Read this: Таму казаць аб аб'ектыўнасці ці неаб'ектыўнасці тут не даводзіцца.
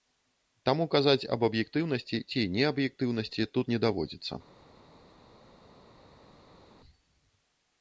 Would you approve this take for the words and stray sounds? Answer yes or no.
yes